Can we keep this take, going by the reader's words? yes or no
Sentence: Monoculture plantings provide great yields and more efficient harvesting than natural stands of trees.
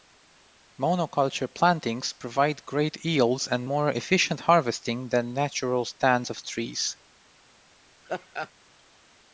yes